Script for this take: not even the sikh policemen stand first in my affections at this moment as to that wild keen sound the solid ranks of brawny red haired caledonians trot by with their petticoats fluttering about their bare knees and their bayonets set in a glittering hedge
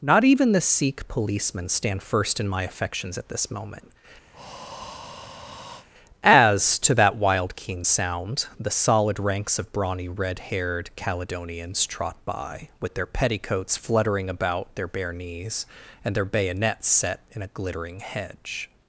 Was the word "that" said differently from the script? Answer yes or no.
no